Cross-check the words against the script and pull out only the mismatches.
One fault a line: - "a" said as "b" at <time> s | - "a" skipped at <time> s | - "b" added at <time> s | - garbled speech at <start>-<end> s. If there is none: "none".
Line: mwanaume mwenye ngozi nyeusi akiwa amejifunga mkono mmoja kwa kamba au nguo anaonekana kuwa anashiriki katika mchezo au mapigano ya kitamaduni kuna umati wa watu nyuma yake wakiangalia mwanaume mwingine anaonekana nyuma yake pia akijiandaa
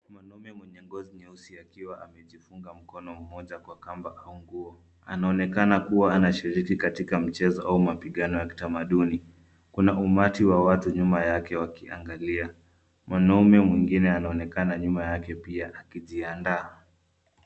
none